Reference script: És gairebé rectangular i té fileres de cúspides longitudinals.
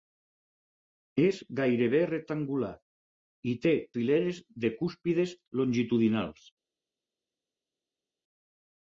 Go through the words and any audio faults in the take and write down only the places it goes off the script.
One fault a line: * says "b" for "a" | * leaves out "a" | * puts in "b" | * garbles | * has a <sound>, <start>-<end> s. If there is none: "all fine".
all fine